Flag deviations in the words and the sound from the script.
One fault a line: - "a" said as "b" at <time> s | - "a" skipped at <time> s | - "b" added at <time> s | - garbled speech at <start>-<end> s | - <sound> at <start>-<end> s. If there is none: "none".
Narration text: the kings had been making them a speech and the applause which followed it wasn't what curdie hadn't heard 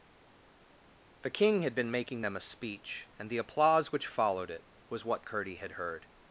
- "kings" said as "king" at 1.3 s
- "wasn't" said as "was" at 4.9 s
- "hadn't" said as "had" at 5.6 s